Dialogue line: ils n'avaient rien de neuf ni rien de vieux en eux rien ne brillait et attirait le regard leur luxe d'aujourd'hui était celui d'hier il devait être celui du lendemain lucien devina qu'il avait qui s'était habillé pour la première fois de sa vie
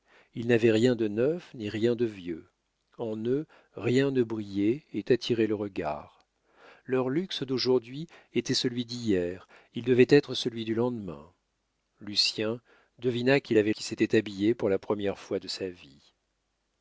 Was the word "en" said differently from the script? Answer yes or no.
no